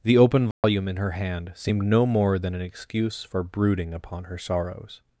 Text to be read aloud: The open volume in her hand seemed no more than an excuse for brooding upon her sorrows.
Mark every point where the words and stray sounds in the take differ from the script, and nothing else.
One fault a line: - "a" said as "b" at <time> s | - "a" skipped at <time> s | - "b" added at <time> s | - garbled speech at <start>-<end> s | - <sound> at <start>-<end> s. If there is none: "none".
- dropout at 0.5-0.6 s